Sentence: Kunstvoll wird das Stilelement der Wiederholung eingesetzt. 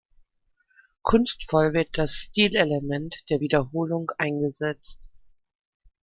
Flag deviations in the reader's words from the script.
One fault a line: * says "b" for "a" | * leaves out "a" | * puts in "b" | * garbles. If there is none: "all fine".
all fine